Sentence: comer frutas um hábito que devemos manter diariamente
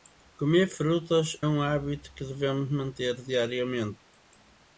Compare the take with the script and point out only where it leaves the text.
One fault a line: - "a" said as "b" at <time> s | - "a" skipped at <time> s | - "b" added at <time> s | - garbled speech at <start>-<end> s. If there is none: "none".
none